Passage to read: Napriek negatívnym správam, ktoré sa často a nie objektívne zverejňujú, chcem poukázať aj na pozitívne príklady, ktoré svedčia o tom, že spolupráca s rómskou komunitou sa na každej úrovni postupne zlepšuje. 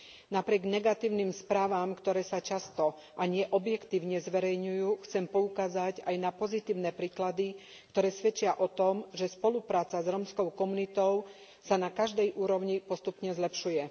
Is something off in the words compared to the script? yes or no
no